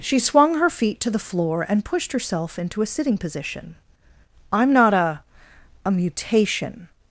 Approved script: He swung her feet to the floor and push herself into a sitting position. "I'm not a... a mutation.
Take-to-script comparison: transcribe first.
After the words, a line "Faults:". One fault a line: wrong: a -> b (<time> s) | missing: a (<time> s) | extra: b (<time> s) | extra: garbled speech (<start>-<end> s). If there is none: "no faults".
She swung her feet to the floor and pushed herself into a sitting position. "I'm not a... a mutation.
Faults:
wrong: He -> She (0.0 s)
wrong: push -> pushed (1.9 s)